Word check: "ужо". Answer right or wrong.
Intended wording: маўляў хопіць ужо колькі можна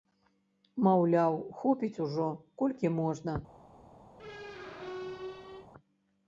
right